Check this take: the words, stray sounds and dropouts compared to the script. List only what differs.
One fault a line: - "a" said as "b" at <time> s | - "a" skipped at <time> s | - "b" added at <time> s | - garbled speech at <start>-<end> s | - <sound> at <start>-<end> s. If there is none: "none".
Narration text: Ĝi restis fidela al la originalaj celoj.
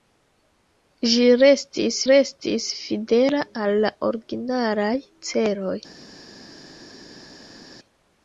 - "restis" added at 2.1 s